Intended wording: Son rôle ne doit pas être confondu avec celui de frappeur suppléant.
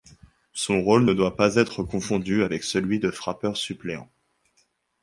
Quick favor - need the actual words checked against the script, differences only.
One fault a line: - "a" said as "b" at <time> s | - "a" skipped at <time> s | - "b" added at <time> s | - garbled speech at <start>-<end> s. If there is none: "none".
none